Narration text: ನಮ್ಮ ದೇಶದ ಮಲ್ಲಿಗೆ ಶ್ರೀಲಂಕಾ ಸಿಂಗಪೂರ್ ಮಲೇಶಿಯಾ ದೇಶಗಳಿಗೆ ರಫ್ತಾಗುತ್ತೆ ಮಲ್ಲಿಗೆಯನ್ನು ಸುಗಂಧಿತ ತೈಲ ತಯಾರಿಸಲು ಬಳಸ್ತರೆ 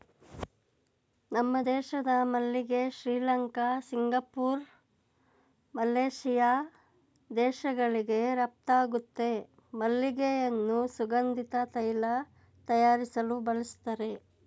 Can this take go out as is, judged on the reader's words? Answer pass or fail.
pass